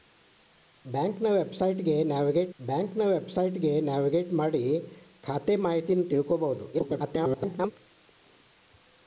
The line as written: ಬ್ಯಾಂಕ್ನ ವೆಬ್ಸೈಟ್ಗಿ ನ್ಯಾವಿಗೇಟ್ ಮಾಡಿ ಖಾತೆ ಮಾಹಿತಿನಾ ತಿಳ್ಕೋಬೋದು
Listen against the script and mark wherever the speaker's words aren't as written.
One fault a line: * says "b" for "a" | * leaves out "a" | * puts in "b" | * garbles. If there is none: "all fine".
* puts in "ಬ್ಯಾಂಕ್ನ ವೆಬ್ಸೈಟ್ಗಿ ನ್ಯಾವಿಗೇಟ್"
* garbles